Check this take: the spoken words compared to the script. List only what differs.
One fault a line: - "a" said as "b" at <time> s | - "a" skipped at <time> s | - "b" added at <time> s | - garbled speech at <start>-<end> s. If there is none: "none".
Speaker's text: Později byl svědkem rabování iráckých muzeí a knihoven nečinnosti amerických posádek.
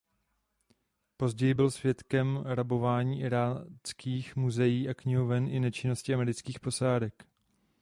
- "i" added at 5.5 s